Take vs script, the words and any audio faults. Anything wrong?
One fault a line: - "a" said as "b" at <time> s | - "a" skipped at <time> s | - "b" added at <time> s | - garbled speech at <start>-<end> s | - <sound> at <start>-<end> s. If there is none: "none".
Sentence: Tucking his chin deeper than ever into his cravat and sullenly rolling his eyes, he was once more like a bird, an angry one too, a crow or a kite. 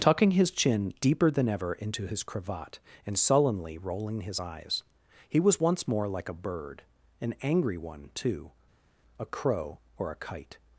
none